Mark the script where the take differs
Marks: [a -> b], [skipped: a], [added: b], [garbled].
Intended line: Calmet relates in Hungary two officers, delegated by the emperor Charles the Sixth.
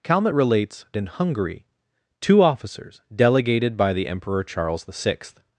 Calmet relates in Hungary two officers, delegated by the emperor Charles the Sixth.